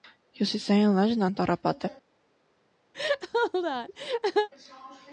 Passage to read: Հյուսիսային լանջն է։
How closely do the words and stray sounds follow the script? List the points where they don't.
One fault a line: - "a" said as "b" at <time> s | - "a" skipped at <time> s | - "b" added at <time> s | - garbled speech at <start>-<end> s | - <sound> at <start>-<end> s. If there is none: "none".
- "անտառապատ" added at 1.3 s
- laugh at 2.9-4.5 s